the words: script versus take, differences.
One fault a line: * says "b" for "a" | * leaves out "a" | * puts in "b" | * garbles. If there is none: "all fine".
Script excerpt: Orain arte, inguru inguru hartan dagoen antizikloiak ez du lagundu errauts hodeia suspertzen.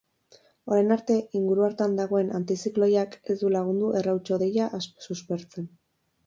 * leaves out "inguru"